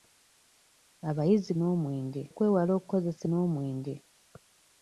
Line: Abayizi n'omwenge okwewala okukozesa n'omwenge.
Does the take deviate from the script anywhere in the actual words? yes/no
no